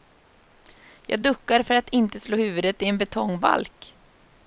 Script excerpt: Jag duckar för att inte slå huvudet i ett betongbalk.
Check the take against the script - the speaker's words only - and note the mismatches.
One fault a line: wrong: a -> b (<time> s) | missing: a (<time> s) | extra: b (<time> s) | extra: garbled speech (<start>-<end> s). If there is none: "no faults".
wrong: ett -> en (2.9 s)